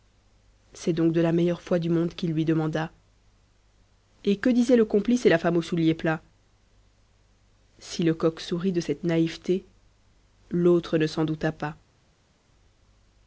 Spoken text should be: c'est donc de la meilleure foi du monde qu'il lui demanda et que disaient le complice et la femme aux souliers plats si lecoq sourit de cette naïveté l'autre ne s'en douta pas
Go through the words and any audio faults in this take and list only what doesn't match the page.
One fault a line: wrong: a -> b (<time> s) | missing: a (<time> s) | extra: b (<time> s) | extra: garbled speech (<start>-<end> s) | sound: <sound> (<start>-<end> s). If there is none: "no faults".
no faults